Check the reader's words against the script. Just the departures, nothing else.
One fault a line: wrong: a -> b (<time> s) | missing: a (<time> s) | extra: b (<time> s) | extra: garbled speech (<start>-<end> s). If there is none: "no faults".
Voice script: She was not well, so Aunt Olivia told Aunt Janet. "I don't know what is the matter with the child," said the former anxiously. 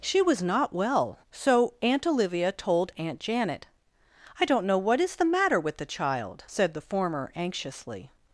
no faults